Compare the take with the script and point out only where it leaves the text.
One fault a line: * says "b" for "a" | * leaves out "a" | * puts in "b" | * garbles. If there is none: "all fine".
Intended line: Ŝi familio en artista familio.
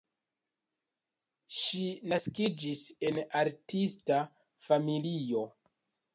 * says "naskiĝis" for "familio"